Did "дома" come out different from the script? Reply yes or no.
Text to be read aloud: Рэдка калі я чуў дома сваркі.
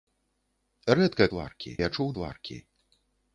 yes